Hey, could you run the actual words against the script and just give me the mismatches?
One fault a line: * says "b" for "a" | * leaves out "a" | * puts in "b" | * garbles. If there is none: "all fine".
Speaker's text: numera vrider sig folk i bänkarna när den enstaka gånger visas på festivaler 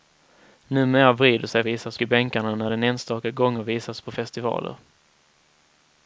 * says "visas" for "folk"